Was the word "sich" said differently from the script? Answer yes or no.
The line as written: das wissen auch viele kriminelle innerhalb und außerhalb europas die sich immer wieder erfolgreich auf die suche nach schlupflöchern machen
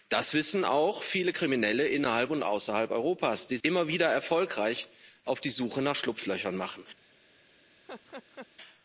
yes